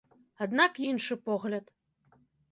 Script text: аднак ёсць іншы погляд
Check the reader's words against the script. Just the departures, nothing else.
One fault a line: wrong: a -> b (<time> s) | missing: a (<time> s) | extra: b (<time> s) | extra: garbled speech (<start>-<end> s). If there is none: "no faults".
missing: ёсць (0.8 s)